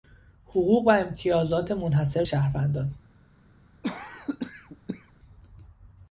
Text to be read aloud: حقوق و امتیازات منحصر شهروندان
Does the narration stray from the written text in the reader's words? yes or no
no